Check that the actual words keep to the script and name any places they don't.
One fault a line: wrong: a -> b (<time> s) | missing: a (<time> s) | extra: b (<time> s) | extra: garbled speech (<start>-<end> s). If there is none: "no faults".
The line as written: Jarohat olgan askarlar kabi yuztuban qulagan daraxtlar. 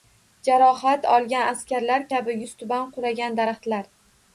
no faults